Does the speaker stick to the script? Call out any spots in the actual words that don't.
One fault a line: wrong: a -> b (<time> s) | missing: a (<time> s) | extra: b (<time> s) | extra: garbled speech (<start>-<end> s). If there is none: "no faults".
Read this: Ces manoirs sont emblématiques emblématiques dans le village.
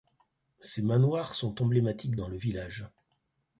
missing: emblématiques (2.1 s)